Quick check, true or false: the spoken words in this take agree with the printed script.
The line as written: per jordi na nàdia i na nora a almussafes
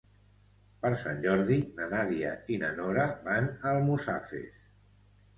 false